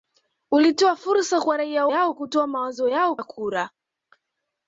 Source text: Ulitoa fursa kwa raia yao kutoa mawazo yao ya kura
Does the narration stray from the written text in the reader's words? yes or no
no